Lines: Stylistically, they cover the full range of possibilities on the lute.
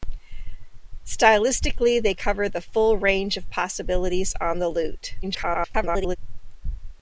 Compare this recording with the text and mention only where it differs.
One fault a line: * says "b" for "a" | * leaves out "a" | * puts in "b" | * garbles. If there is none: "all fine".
* garbles